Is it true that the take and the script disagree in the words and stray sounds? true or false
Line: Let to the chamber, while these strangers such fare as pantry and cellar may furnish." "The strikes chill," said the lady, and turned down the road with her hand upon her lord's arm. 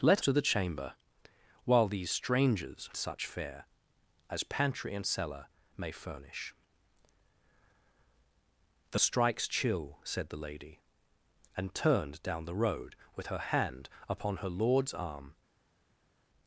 false